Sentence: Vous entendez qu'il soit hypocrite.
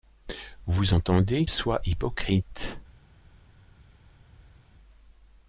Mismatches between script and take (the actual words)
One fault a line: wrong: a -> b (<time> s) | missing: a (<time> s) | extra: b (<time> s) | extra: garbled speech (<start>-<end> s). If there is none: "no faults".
missing: qu'il (1.4 s)